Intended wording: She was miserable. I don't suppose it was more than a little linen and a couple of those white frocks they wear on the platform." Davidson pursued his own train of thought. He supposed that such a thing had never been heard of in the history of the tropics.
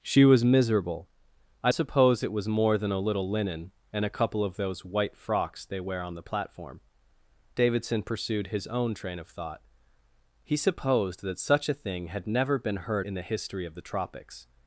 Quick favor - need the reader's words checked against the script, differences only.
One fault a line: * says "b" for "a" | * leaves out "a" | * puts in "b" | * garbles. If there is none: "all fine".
* leaves out "don't"
* leaves out "of"